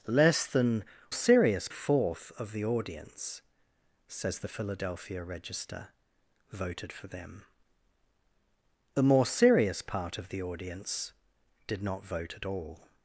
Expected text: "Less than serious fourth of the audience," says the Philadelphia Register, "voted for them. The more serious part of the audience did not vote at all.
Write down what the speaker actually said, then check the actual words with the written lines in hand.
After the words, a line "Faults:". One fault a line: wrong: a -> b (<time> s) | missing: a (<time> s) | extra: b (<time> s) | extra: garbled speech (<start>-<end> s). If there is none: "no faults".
"Less than serious fourth of the audience," says the Philadelphia Register, "voted for them. The more serious part of the audience did not vote at all.
Faults:
no faults